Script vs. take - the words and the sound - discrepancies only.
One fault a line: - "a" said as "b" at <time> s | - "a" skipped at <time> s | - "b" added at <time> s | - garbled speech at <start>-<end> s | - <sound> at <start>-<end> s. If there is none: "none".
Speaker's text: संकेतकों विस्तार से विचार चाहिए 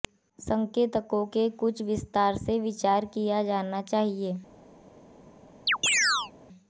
- "के कुछ" added at 1.3 s
- "किया जाना" added at 3.1 s
- chirp at 5.7-6.3 s